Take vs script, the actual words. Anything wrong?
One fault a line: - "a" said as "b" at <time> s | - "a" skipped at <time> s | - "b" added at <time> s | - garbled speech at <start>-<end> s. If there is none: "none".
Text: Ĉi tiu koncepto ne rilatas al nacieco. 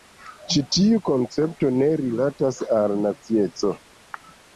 none